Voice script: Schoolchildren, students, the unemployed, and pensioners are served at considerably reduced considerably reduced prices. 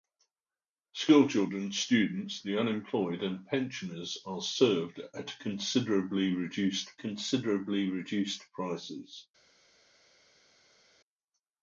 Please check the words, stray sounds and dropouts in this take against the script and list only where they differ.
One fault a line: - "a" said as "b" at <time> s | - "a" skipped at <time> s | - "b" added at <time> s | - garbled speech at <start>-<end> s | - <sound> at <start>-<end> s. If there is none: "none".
none